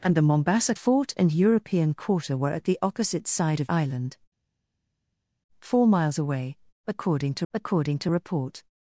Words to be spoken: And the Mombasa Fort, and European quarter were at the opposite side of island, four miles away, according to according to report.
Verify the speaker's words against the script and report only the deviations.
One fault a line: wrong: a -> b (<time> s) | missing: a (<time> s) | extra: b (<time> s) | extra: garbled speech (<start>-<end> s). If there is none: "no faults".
no faults